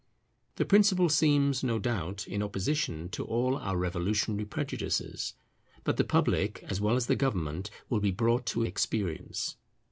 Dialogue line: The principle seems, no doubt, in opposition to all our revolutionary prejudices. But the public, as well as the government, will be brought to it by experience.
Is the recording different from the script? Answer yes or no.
yes